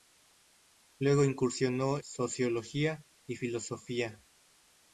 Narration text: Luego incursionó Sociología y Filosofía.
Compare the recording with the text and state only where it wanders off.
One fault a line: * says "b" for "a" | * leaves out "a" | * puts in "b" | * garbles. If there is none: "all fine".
all fine